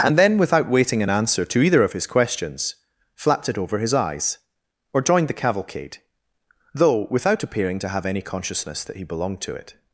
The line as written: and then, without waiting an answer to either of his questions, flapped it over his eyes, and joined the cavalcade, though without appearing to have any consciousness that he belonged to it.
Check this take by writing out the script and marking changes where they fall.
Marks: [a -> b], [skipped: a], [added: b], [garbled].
and then, without waiting an answer to either of his questions, flapped it over his eyes, [and -> or] joined the cavalcade, though without appearing to have any consciousness that he belonged to it.